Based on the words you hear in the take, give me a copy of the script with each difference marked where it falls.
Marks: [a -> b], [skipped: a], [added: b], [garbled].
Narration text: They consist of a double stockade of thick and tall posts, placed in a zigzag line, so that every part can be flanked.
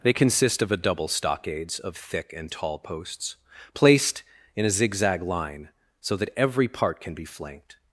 They consist of a double [stockade -> stockades] of thick and tall posts, placed in a zigzag line, so that every part can be flanked.